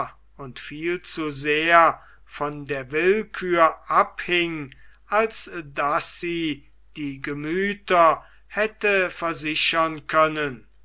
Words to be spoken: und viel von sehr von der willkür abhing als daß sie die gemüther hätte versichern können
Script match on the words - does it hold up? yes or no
no